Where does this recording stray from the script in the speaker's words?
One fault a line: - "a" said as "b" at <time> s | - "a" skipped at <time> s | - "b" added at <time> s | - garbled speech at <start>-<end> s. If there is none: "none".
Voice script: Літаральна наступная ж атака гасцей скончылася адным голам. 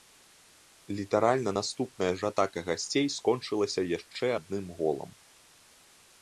- "яшчэ" added at 4.0 s